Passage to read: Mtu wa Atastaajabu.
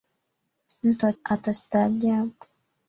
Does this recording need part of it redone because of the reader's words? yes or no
no